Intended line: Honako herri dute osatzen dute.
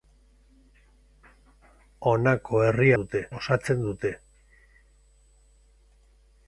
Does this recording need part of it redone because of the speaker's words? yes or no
no